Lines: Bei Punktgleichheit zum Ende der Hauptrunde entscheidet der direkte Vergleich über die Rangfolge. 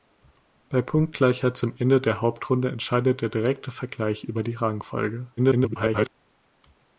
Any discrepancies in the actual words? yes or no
yes